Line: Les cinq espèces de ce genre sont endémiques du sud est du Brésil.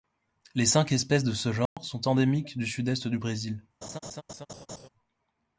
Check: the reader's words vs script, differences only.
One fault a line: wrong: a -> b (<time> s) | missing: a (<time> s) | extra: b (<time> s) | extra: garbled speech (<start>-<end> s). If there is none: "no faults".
no faults